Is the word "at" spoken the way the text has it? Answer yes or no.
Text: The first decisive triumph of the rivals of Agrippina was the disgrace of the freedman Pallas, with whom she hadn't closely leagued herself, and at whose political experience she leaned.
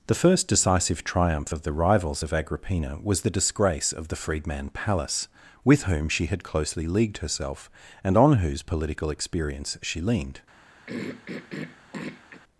no